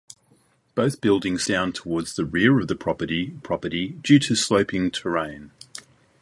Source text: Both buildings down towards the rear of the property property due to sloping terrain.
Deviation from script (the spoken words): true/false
false